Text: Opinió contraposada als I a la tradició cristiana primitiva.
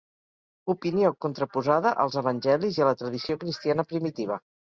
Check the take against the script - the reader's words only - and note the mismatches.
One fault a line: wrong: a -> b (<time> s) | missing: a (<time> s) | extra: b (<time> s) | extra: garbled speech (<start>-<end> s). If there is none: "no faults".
extra: Evangelis (2.2 s)